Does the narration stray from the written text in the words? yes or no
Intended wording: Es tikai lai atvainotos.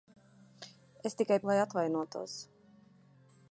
no